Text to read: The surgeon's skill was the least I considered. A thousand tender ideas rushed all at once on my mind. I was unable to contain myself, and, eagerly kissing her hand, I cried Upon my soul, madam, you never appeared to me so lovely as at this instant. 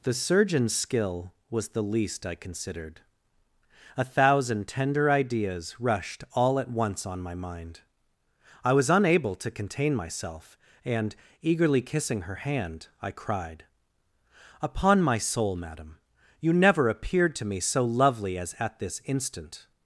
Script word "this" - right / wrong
right